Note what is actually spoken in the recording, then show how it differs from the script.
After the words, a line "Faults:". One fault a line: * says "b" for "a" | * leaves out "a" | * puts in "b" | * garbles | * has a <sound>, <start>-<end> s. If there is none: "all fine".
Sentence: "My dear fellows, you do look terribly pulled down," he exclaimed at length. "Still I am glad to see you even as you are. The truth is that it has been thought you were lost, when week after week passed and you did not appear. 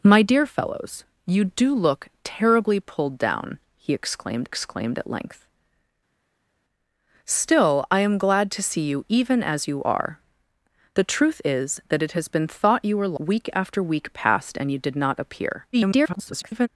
"My dear fellows, you do look terribly pulled down," he exclaimed exclaimed at length. "Still I am glad to see you even as you are. The truth is that it has been thought you were week after week passed and you did not appear. [garbled]
Faults:
* puts in "exclaimed"
* leaves out "lost when"
* garbles